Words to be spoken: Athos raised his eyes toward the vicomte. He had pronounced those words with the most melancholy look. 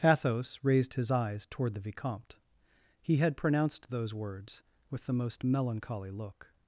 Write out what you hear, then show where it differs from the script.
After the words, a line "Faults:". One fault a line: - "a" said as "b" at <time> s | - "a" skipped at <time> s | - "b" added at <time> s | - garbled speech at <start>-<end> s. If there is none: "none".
Athos raised his eyes toward the vicomte. He had pronounced those words with the most melancholy look.
Faults:
none